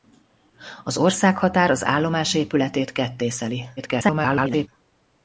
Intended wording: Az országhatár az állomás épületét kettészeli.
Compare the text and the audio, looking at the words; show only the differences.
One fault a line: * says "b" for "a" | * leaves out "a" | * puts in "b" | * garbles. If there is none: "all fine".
* garbles